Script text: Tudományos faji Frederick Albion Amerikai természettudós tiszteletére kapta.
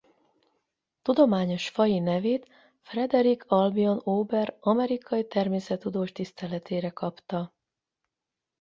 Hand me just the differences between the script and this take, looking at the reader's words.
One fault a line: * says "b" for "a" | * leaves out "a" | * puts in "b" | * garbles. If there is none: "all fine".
* puts in "nevét"
* puts in "Ober"